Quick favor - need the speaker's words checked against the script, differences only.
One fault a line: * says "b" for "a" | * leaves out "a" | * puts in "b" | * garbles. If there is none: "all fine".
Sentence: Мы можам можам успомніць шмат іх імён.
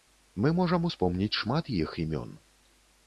* leaves out "можам"